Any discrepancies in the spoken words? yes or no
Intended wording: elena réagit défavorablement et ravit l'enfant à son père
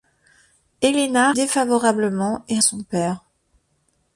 yes